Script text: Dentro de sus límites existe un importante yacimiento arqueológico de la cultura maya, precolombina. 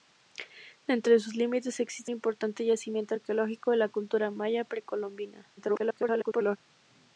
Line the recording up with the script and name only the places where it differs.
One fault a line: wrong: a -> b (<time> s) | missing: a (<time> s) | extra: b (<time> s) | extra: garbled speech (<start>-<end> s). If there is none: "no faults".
missing: un (2.1 s)
extra: garbled speech (5.6-6.6 s)